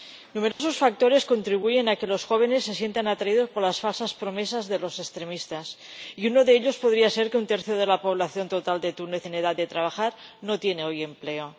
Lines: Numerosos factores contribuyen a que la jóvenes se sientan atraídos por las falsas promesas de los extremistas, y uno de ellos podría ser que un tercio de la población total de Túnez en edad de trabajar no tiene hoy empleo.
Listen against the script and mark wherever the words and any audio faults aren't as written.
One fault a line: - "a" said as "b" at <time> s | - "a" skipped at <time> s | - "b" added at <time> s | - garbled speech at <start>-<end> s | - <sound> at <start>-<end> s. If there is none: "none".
- dropout at 0.5-0.6 s
- "la" said as "los" at 2.1 s